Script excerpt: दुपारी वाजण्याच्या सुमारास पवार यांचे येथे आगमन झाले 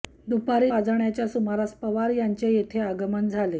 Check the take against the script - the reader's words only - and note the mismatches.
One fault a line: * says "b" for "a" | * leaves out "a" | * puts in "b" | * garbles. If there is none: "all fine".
all fine